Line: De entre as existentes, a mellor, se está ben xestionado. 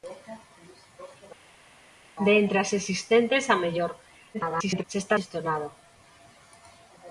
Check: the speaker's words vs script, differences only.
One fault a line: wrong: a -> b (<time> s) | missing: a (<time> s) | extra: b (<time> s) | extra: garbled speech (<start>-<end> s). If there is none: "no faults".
extra: garbled speech (4.3-4.8 s)
missing: ben (5.2 s)